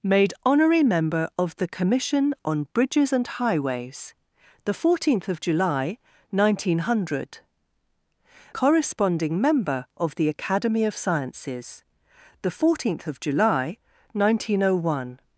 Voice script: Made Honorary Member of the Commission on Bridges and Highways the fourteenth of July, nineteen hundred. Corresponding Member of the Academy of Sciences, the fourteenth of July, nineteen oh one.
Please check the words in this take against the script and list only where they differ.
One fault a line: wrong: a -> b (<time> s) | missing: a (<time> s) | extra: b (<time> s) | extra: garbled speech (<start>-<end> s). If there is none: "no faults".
no faults